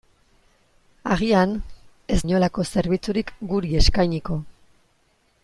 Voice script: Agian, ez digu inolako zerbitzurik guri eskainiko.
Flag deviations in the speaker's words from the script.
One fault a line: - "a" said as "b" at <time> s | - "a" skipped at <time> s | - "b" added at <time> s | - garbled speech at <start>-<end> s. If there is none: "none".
- "digu" skipped at 2.2 s